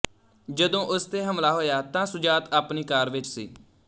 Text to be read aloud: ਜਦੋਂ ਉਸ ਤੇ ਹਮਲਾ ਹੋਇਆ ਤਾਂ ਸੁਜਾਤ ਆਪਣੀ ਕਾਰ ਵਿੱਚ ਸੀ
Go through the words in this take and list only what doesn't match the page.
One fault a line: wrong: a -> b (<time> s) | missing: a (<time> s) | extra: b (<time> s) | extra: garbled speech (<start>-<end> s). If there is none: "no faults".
no faults